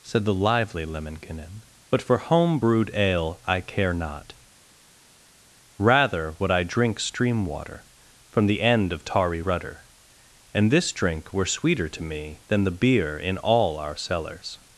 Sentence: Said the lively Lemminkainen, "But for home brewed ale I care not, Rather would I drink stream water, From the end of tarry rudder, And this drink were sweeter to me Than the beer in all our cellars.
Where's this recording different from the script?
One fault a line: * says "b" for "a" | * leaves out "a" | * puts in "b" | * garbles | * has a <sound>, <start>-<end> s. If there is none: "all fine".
all fine